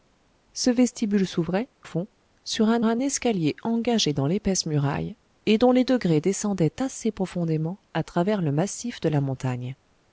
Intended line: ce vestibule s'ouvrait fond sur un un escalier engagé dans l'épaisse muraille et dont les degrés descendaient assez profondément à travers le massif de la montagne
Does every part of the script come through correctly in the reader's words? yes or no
yes